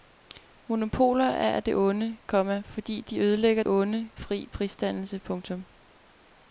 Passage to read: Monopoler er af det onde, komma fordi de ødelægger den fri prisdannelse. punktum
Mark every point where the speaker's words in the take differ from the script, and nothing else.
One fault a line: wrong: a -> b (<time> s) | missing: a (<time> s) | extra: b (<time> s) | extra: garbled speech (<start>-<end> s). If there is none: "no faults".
wrong: den -> onde (3.7 s)